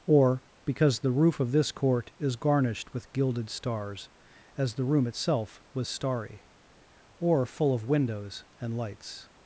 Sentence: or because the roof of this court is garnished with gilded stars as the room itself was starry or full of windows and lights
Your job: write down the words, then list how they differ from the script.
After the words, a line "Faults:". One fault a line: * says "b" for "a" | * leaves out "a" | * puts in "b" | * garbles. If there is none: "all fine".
or because the roof of this court is garnished with gilded stars as the room itself was starry or full of windows and lights
Faults:
all fine